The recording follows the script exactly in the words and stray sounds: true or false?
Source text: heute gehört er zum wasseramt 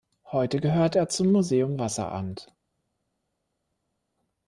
false